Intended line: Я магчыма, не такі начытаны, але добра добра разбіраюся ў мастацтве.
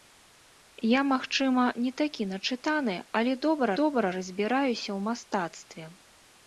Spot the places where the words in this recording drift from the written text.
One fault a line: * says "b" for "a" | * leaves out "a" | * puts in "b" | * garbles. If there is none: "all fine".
all fine